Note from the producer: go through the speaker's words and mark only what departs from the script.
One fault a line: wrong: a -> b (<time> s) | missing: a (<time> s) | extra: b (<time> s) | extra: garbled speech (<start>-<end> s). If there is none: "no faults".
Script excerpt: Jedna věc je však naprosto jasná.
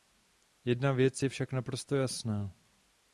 no faults